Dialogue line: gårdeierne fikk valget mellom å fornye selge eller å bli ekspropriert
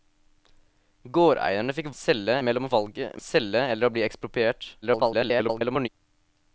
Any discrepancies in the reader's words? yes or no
yes